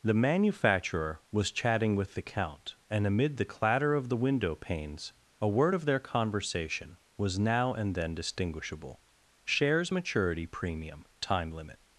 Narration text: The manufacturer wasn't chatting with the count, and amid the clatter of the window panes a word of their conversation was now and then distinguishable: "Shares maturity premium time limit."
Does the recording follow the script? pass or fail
fail